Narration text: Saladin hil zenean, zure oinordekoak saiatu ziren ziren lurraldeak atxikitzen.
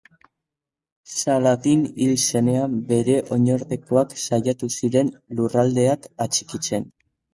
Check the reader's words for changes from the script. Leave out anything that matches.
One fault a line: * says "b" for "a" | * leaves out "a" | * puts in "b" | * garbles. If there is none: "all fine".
* says "bere" for "zure"
* leaves out "ziren"